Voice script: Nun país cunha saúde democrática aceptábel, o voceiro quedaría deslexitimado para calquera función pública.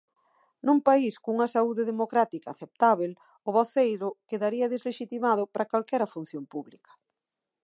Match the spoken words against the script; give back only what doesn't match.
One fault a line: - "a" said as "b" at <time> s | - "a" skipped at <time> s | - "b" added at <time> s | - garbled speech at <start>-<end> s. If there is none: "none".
none